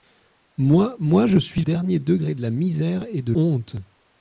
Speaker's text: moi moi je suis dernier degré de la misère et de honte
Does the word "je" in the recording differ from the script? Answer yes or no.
no